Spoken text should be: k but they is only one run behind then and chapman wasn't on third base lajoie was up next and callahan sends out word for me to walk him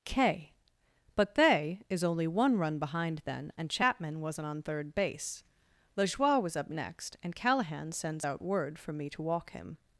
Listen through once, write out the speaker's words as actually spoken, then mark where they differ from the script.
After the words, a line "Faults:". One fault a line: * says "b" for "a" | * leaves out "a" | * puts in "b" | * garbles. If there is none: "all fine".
k but they is only one run behind then and chapman wasn't on third base lajoie was up next and callahan sends out word for me to walk him
Faults:
all fine